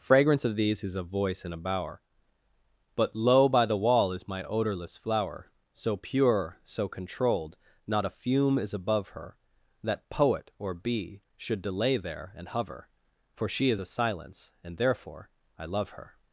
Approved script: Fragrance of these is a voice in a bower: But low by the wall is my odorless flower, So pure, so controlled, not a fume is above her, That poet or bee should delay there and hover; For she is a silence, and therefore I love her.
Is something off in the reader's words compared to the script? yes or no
no